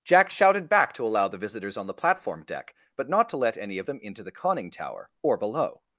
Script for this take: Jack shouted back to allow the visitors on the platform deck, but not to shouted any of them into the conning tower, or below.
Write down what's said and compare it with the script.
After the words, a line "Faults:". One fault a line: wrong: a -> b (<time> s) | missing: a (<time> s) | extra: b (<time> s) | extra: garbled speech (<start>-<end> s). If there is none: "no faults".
Jack shouted back to allow the visitors on the platform deck, but not to let any of them into the conning tower, or below.
Faults:
wrong: shouted -> let (3.4 s)